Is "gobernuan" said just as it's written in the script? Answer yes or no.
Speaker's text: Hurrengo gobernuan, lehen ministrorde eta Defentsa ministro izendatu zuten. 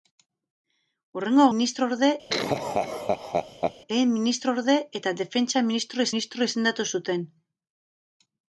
no